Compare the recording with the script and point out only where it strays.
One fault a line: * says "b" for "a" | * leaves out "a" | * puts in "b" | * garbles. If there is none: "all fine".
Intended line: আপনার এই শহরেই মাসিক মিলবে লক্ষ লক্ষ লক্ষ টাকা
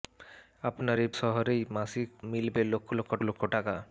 all fine